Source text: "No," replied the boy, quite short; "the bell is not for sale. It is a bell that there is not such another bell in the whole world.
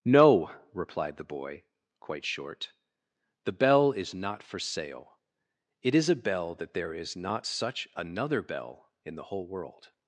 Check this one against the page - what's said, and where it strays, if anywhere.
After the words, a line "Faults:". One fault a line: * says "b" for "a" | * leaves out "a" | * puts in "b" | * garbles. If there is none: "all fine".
"No," replied the boy, quite short; "the bell is not for sale. It is a bell that there is not such another bell in the whole world.
Faults:
all fine